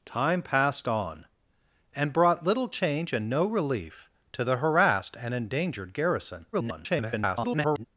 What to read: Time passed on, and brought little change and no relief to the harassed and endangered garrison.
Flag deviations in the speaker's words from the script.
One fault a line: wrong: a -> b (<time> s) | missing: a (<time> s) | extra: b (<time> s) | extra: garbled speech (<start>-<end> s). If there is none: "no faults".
extra: garbled speech (6.5-7.9 s)